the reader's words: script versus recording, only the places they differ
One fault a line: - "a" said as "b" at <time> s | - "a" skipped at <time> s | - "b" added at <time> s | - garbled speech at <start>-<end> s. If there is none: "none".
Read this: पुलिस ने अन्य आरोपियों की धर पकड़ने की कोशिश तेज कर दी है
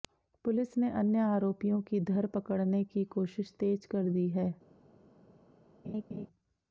none